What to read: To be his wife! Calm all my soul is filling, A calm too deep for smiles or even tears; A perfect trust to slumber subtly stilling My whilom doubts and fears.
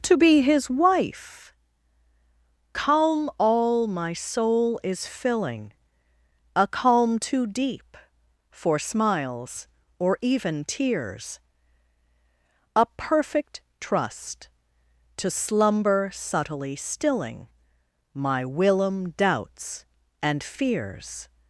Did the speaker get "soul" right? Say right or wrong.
right